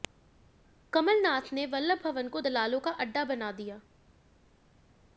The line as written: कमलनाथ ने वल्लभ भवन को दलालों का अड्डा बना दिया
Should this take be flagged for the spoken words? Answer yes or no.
no